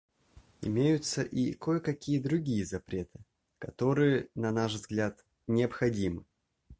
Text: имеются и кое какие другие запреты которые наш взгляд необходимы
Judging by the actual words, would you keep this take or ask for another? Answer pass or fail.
fail